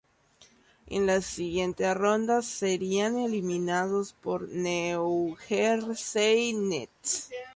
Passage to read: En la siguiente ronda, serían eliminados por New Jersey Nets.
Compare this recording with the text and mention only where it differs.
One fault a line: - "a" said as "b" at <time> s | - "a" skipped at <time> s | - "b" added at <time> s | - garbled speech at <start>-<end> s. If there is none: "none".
none